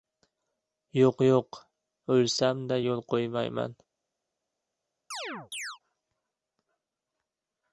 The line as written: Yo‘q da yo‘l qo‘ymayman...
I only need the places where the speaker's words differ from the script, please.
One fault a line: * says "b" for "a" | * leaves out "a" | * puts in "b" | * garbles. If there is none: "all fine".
* puts in "yo‘q o‘lsam"